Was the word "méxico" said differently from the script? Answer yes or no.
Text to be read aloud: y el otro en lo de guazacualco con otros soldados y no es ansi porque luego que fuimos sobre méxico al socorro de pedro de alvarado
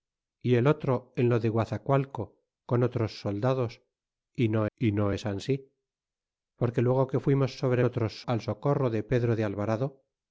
yes